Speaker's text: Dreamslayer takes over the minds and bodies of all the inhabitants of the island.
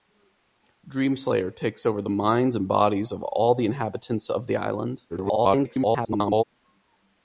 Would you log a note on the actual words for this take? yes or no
yes